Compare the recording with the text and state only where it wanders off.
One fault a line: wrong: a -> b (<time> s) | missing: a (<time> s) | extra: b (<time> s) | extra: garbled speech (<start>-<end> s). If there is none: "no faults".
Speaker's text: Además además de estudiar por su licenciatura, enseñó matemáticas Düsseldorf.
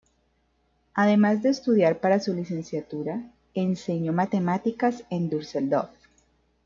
missing: además (1.4 s)
wrong: por -> para (2.0 s)
extra: en (5.1 s)